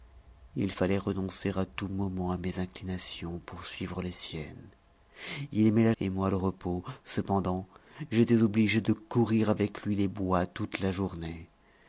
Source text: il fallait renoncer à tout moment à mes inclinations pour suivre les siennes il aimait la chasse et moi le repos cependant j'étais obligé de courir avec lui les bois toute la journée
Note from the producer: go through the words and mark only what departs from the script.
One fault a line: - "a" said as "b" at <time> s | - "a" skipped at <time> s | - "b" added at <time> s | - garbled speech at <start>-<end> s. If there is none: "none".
- "chasse" skipped at 5.9 s